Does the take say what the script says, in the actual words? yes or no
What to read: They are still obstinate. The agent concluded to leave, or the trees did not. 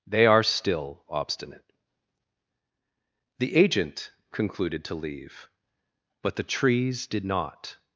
no